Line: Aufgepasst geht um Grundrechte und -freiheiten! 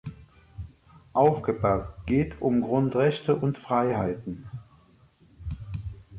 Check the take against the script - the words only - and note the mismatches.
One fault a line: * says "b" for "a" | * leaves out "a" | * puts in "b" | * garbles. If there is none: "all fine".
all fine